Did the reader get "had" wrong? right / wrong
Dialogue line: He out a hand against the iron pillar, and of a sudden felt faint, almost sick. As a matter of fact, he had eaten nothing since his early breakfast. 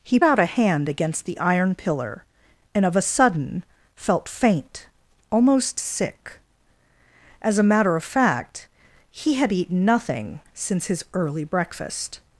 right